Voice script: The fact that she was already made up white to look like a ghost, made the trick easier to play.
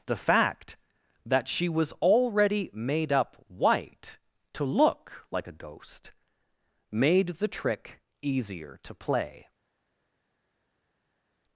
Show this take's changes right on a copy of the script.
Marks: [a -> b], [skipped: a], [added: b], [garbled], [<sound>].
The fact that she was already made up white to look like a ghost, made the trick easier to play.